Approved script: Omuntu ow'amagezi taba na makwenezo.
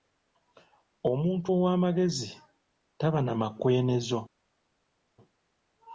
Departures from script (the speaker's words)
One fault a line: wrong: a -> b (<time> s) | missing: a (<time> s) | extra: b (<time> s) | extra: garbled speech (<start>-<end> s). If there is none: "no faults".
no faults